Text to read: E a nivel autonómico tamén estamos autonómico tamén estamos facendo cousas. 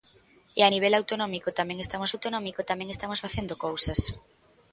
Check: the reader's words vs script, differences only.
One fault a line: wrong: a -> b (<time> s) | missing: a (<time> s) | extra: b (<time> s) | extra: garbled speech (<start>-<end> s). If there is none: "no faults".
no faults